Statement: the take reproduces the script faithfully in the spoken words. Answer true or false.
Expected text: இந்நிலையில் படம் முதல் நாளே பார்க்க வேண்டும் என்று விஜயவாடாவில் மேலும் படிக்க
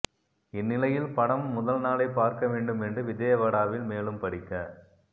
true